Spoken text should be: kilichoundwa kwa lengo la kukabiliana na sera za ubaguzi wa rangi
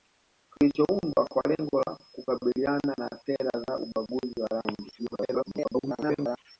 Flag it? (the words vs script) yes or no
yes